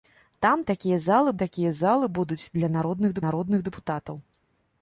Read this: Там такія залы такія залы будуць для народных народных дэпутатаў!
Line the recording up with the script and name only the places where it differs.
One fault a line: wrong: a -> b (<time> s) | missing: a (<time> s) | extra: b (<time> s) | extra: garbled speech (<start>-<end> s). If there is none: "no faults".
no faults